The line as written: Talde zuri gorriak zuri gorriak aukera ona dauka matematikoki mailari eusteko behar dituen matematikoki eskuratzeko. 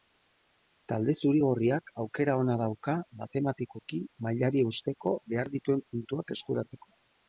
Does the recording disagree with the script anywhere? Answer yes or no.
yes